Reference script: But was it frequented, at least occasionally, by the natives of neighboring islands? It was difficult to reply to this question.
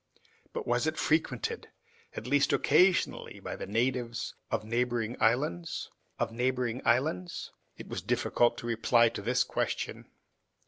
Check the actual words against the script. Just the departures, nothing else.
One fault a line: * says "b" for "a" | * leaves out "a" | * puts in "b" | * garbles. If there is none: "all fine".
* puts in "of neighboring islands"